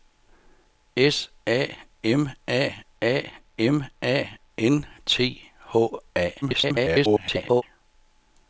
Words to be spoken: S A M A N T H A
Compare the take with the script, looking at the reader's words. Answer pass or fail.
fail